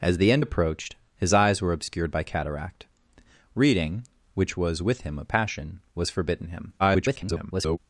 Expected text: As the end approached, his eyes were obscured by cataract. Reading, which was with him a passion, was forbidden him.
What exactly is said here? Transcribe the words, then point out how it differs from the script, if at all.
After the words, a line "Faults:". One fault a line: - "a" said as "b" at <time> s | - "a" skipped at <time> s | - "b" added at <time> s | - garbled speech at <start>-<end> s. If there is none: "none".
As the end approached, his eyes were obscured by cataract. Reading, which was with him a passion, was forbidden him. [garbled]
Faults:
- garbled speech at 6.8-7.8 s